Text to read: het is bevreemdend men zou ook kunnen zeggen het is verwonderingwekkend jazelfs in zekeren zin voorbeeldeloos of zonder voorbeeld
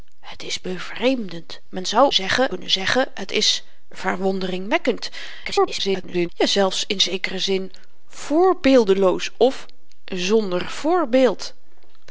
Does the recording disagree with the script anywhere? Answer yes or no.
yes